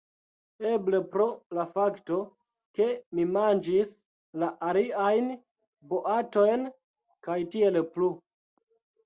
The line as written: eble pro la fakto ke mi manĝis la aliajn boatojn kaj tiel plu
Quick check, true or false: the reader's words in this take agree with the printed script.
true